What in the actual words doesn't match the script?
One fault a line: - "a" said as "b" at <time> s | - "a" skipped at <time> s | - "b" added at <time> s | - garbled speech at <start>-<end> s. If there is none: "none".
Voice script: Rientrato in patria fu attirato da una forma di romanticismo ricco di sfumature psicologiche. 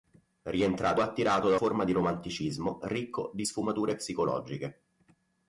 - "in patria fu" skipped at 1.0 s
- "una" skipped at 1.6 s